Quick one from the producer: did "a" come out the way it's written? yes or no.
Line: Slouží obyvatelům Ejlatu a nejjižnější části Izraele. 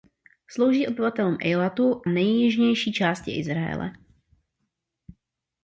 no